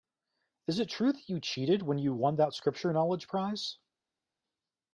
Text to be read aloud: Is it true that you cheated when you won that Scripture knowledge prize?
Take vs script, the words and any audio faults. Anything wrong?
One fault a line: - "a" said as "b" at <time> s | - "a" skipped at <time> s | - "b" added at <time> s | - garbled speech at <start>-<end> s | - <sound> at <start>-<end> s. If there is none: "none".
none